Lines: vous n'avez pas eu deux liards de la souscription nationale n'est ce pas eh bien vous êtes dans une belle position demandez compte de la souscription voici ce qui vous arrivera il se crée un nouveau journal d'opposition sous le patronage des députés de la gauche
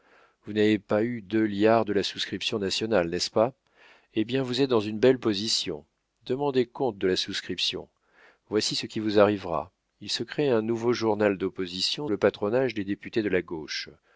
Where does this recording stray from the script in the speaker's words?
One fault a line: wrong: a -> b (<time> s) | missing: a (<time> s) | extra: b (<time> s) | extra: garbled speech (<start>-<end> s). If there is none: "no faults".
missing: sous (12.1 s)